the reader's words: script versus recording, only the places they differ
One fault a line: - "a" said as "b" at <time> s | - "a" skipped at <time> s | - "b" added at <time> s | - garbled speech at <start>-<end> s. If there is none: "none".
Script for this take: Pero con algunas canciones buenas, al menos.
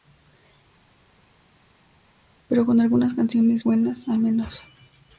none